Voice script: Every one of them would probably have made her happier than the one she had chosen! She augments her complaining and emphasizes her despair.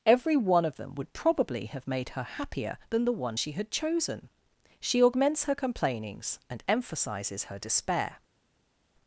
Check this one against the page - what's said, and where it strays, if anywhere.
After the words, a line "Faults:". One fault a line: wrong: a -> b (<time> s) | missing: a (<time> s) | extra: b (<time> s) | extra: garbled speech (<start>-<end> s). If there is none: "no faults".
Every one of them would probably have made her happier than the one she had chosen! She augments her complainings and emphasizes her despair.
Faults:
wrong: complaining -> complainings (5.6 s)